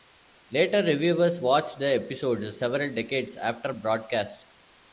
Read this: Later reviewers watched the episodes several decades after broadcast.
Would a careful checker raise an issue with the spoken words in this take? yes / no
no